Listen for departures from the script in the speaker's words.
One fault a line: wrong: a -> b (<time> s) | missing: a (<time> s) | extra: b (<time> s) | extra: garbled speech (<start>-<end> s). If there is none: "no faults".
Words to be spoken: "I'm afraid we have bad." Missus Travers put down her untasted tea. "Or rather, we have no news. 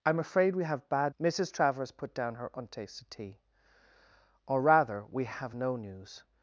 no faults